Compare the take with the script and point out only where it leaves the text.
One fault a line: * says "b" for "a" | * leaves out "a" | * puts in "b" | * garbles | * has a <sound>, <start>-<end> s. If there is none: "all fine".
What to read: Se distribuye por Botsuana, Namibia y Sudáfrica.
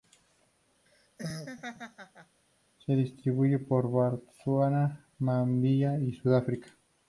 * has a laugh, 0.9-2.4 s